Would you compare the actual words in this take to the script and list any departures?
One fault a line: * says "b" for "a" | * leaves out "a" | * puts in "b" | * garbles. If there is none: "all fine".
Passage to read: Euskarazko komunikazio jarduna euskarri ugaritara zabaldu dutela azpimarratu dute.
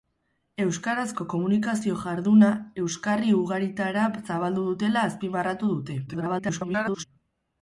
* garbles